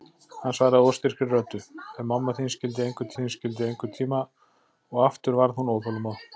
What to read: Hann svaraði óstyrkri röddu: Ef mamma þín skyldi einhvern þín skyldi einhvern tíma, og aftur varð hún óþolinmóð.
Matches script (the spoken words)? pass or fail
pass